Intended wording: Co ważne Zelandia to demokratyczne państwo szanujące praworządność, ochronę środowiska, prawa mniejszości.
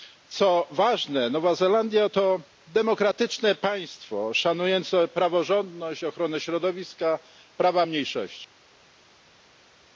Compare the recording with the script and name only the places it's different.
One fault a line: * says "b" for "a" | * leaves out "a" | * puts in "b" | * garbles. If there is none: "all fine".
* puts in "Nowa"